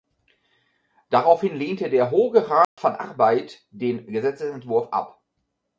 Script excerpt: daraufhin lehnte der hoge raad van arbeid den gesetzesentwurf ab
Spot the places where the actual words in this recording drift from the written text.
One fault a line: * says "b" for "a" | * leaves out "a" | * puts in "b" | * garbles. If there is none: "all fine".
all fine